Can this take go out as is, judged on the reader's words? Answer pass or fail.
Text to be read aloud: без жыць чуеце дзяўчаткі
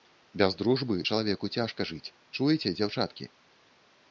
fail